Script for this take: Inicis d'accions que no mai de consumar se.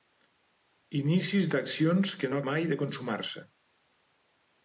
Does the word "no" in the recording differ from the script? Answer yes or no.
no